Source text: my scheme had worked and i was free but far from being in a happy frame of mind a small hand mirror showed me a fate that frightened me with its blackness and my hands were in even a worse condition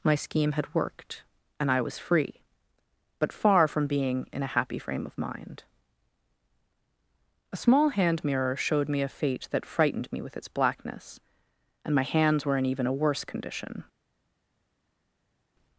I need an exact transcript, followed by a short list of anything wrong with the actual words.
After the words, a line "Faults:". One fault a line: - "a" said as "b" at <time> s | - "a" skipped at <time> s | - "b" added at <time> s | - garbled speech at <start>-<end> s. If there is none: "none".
my scheme had worked and i was free but far from being in a happy frame of mind a small hand mirror showed me a fate that frightened me with its blackness and my hands were in even a worse condition
Faults:
none